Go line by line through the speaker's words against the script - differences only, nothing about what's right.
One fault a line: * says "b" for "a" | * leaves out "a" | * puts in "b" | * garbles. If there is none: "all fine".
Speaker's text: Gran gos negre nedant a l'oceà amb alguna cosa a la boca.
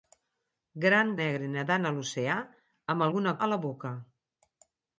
* leaves out "gos"
* leaves out "cosa"